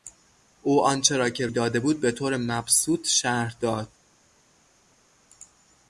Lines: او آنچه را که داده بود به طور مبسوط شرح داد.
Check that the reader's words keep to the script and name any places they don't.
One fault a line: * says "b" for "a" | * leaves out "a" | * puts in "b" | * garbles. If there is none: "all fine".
all fine